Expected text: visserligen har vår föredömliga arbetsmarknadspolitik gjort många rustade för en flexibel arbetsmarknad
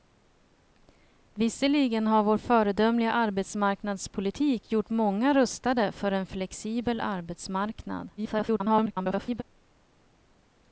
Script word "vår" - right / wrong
right